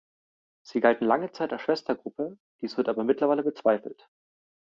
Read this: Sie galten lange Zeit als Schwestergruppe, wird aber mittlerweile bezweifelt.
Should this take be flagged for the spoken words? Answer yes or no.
yes